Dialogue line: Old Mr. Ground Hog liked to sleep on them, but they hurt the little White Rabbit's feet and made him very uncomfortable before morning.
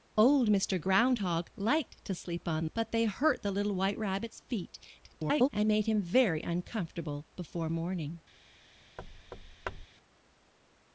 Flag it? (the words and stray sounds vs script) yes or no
yes